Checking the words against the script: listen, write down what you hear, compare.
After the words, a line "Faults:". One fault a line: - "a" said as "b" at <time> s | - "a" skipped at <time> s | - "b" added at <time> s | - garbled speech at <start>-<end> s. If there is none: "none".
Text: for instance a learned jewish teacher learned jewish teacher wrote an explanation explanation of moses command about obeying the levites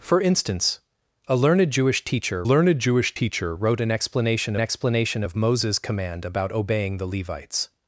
for instance a learned jewish teacher learned jewish teacher wrote an explanation explanation of moses command about obeying the levites
Faults:
none